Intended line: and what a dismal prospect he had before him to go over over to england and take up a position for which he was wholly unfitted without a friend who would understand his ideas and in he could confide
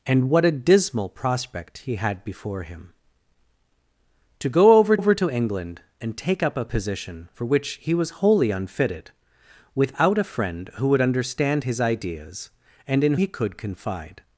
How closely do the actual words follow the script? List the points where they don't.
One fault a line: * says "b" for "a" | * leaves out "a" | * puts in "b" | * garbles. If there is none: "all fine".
all fine